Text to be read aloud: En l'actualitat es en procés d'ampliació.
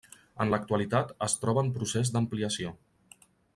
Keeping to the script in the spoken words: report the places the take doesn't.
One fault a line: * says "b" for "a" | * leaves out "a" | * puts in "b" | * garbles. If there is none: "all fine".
* puts in "troba"